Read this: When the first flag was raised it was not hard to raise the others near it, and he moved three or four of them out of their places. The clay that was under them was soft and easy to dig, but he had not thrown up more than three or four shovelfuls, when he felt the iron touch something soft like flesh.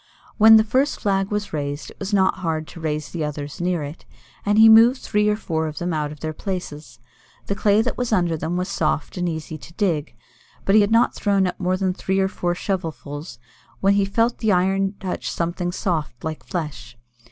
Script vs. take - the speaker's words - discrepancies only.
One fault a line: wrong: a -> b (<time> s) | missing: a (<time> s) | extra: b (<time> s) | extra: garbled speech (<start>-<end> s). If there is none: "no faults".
no faults